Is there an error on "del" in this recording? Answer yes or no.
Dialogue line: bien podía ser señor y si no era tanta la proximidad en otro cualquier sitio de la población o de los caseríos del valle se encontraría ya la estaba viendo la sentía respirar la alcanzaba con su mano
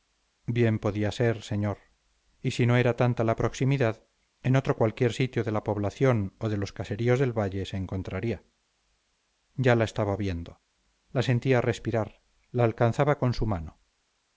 no